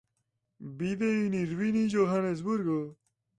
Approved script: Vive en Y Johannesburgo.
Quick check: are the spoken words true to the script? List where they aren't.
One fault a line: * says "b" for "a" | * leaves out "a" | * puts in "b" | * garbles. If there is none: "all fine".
* puts in "Irvine"